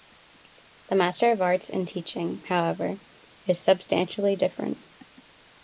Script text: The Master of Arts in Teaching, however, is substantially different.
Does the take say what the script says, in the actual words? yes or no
yes